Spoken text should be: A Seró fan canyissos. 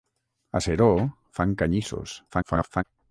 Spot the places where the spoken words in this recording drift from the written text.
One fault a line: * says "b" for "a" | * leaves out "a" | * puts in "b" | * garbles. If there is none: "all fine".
* garbles